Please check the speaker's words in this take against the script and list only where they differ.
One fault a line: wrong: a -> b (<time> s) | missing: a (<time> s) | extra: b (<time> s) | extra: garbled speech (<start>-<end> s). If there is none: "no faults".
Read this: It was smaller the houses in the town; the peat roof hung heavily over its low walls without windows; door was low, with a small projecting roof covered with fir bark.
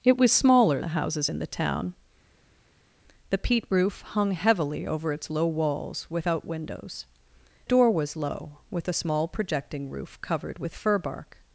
no faults